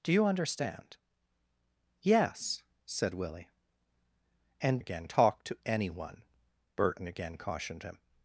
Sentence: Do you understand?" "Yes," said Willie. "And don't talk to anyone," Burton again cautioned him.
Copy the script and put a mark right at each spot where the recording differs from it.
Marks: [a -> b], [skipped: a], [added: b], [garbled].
Do you understand?" "Yes," said Willie. "And [don't -> again] talk to anyone," Burton again cautioned him.